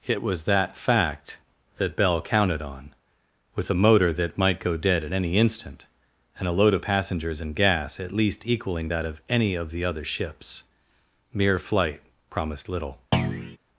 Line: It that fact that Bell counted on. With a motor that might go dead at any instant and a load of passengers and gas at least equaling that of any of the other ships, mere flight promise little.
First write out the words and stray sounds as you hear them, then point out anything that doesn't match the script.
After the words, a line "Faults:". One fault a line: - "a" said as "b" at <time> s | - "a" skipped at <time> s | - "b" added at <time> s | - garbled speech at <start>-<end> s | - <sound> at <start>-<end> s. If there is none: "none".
It was that fact that Bell counted on. With a motor that might go dead at any instant and a load of passengers and gas at least equaling that of any of the other ships, mere flight promised little.
Faults:
- "was" added at 0.2 s
- "promise" said as "promised" at 12.3 s
- thud at 13.1-13.6 s